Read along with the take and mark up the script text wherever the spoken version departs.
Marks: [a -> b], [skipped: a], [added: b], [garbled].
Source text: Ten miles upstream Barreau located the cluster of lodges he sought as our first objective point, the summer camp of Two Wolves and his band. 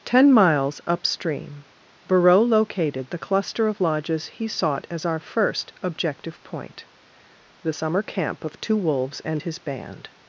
Ten miles upstream Barreau located the cluster of lodges he sought as our first objective point, the summer camp of Two Wolves and his band.